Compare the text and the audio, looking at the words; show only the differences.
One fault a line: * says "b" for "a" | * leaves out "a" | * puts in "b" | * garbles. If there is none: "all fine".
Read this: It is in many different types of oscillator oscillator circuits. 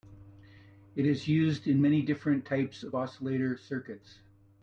* puts in "used"
* leaves out "oscillator"